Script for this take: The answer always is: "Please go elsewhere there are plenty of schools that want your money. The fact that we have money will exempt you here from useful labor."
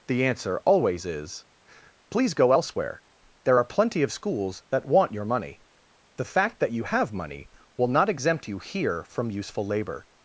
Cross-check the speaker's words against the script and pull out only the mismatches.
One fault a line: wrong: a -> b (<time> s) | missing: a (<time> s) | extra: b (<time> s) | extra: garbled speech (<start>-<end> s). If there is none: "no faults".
wrong: we -> you (6.7 s)
extra: not (7.9 s)